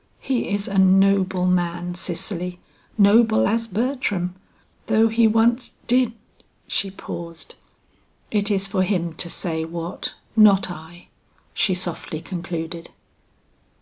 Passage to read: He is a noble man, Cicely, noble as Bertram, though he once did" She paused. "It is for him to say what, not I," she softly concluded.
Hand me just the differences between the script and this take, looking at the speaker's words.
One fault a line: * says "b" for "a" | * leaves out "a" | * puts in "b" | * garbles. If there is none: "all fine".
all fine